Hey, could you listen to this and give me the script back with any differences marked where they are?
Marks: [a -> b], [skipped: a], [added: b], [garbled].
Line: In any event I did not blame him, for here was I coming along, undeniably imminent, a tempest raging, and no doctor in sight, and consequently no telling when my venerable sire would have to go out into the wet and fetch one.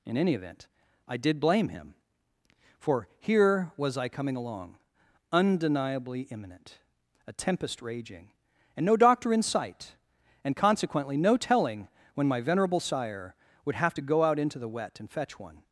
In any event I did [skipped: not] blame him, for here was I coming along, undeniably imminent, a tempest raging, and no doctor in sight, and consequently no telling when my venerable sire would have to go out into the wet and fetch one.